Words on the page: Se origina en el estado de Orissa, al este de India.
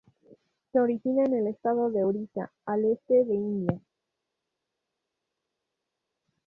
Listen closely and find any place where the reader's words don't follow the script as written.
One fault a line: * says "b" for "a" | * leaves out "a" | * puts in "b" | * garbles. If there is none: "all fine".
all fine